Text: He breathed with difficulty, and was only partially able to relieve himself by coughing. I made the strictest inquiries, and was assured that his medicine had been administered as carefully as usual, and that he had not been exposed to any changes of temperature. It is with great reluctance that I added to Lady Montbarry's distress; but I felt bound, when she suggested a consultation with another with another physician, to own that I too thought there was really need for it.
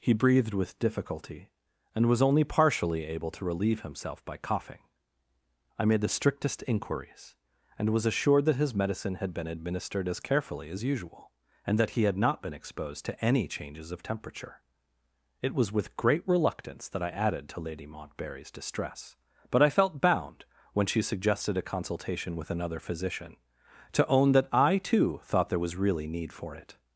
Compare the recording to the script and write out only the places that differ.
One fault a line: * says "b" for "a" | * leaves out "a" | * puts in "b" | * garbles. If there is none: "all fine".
* says "was" for "is"
* leaves out "with another"